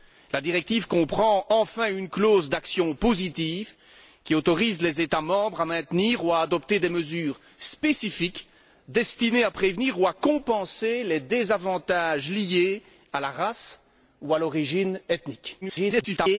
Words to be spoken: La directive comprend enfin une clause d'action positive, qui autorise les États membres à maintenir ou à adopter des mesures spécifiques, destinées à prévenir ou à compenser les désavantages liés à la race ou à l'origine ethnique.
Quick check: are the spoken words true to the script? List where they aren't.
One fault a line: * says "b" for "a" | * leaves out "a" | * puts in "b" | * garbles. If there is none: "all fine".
* garbles